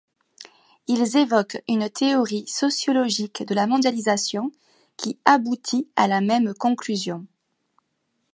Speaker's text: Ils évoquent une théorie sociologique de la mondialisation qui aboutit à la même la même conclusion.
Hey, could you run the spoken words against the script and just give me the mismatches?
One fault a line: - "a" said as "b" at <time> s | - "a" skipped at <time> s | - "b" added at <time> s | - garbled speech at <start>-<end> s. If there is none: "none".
- "la même" skipped at 6.5 s